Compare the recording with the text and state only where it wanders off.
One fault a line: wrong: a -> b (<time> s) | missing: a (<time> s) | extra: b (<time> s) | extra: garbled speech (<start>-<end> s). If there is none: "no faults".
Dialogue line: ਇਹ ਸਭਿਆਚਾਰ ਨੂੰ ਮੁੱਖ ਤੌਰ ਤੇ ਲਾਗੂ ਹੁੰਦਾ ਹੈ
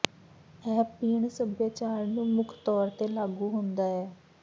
extra: ਪੀਣ (1.0 s)